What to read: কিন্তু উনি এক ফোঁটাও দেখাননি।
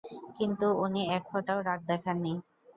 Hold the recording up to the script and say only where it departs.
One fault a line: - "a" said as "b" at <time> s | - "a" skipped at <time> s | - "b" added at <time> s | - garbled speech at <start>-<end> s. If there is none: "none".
- "রাগ" added at 1.6 s